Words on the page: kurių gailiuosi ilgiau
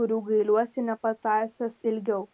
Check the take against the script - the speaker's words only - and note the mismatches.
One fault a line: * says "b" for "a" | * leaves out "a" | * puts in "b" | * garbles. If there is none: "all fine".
* puts in "nepatąsęs"